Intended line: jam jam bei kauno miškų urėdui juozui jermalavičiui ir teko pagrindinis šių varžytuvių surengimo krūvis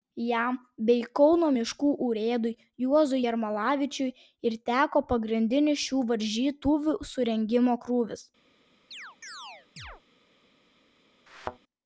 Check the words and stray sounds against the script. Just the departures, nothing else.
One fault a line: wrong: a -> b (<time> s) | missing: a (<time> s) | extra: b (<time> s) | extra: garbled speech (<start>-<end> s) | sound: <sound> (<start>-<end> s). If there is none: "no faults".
missing: jam (0.6 s)
sound: chirp (8.9-10.0 s)
sound: thud (11.3-11.6 s)